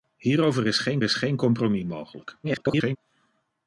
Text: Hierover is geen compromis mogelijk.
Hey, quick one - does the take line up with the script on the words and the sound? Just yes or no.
no